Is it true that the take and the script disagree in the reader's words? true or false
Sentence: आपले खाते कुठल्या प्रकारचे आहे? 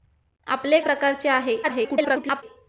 true